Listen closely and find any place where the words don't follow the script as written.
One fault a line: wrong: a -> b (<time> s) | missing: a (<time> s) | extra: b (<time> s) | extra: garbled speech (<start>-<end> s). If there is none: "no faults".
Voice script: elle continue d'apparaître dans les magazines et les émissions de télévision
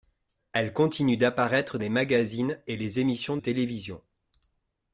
missing: dans (1.8 s)
missing: de (3.4 s)